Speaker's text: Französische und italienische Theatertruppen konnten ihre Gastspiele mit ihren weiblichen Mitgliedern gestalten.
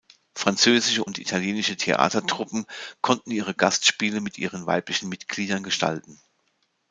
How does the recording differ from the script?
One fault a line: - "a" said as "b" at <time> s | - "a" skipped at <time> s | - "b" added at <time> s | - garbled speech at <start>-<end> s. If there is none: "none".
none